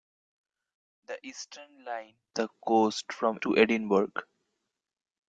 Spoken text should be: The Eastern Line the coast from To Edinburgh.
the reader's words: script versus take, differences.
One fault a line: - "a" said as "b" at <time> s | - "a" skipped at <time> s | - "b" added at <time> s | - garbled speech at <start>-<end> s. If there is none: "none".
none